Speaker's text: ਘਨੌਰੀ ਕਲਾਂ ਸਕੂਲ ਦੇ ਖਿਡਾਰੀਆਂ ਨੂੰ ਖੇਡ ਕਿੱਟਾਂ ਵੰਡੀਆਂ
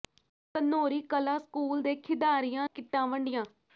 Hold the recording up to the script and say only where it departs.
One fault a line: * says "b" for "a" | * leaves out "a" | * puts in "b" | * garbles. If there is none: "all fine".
* leaves out "ਨੂੰ ਖੇਡ"